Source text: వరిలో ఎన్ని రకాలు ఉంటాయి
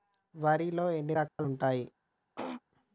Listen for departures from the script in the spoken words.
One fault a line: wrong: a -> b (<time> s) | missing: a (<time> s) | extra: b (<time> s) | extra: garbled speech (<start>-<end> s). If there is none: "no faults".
no faults